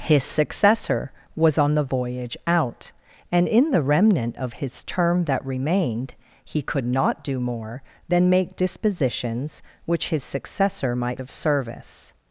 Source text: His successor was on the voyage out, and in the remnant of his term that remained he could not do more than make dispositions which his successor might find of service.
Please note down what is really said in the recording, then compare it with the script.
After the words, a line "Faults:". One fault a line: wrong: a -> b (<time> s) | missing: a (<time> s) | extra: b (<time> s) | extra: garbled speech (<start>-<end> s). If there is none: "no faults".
His successor was on the voyage out, and in the remnant of his term that remained he could not do more than make dispositions which his successor might of service.
Faults:
missing: find (11.2 s)